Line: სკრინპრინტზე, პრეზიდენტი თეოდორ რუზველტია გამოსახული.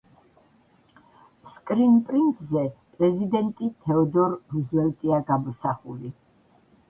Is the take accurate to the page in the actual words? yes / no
yes